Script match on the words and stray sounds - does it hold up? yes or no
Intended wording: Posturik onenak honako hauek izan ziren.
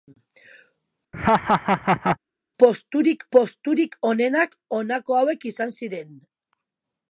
no